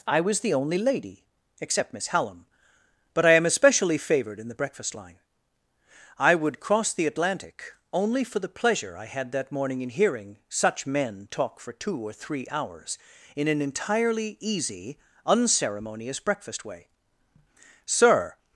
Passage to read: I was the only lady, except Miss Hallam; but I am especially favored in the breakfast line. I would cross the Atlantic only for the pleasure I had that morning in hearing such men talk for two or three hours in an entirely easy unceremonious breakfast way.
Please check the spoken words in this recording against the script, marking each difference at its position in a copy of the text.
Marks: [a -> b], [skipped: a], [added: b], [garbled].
I was the only lady, except Miss Hallam; but I am especially favored in the breakfast line. I would cross the Atlantic only for the pleasure I had that morning in hearing such men talk for two or three hours in an entirely easy unceremonious breakfast way. [added: Sir]